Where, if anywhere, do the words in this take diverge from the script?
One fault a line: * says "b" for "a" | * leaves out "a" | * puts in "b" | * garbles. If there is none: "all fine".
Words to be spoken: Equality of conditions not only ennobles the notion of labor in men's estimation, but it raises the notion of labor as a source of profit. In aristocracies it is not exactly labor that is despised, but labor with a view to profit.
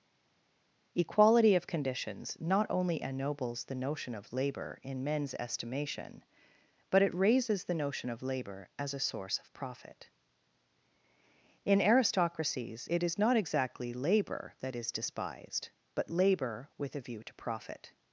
all fine